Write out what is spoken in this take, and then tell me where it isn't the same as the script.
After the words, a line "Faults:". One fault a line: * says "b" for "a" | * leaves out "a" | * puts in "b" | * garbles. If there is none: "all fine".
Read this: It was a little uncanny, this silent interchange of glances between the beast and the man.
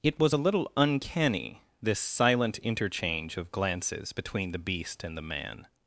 It was a little uncanny, this silent interchange of glances between the beast and the man.
Faults:
all fine